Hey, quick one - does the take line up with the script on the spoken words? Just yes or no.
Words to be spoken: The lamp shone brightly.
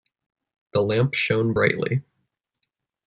yes